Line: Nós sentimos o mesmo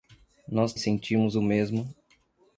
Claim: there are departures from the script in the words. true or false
false